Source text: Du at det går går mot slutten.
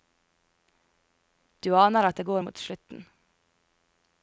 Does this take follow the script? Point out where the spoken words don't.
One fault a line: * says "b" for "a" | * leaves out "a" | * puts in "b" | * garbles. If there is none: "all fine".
* puts in "aner"
* leaves out "går"